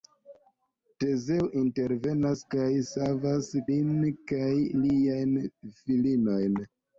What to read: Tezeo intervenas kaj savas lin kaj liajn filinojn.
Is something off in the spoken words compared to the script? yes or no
no